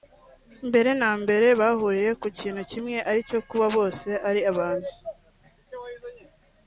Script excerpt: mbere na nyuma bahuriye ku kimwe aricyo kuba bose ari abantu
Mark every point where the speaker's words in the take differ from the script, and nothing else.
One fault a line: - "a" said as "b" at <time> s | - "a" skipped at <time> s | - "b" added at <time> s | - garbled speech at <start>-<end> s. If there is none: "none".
- "nyuma" said as "mbere" at 1.2 s
- "kintu" added at 2.4 s